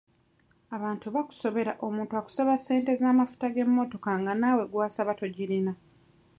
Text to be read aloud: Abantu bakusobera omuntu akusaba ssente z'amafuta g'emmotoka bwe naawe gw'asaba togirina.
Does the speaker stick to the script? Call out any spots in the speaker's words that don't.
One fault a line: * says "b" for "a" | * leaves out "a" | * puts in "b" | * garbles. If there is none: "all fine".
* says "nga" for "bwe"